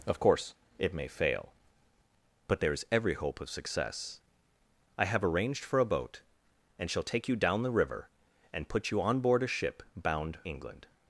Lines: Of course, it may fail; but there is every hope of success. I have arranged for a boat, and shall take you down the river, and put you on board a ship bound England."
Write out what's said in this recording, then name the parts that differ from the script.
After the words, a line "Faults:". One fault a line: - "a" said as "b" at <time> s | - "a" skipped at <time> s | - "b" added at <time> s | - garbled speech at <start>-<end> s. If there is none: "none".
Of course, it may fail; but there is every hope of success. I have arranged for a boat, and shall take you down the river, and put you on board a ship bound England."
Faults:
none